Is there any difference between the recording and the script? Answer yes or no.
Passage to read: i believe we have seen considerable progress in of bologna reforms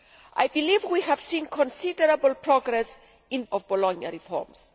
no